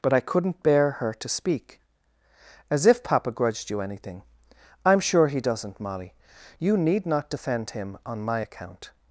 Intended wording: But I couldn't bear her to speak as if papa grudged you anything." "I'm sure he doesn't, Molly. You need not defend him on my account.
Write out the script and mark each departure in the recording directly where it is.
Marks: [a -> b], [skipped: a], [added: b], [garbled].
But I couldn't bear her to speak as if papa grudged you anything." "I'm sure he doesn't, Molly. You need not defend him on my account.